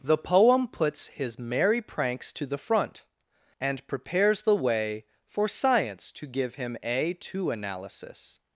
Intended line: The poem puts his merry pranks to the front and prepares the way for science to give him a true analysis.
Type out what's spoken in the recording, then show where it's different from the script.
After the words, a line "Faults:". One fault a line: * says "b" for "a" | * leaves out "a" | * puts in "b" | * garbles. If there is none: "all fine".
The poem puts his merry pranks to the front and prepares the way for science to give him a two analysis.
Faults:
* says "two" for "true"